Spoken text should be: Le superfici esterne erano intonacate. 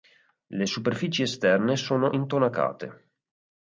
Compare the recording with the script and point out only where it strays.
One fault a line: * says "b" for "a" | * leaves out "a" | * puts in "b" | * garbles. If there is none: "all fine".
* says "sono" for "erano"